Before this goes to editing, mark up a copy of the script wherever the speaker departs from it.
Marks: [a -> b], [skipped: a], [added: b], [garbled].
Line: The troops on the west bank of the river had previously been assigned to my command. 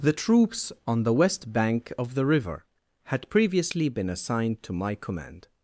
The troops on the west bank of the river had previously been assigned to my command.